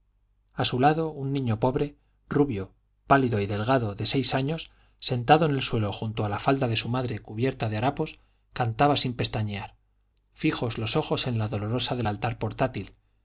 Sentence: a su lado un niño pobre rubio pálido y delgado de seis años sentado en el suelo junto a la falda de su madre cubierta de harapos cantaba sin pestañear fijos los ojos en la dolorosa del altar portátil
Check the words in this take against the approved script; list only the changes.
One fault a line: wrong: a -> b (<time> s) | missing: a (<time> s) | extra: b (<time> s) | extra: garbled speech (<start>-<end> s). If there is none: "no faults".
no faults